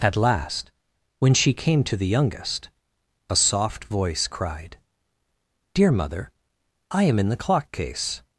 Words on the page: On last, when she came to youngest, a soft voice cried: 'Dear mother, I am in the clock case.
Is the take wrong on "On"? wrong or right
wrong